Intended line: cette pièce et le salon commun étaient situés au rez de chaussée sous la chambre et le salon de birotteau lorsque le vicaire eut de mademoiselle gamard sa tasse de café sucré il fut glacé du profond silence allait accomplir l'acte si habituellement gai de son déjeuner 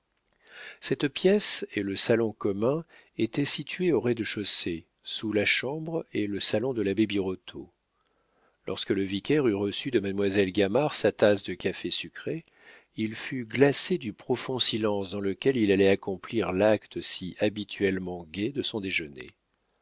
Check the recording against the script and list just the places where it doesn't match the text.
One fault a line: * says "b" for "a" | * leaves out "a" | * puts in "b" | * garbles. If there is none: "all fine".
* puts in "l'abbé"
* puts in "reçu"
* puts in "dans lequel il"